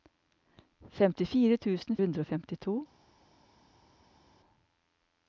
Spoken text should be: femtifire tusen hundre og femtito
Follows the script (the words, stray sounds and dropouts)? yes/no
yes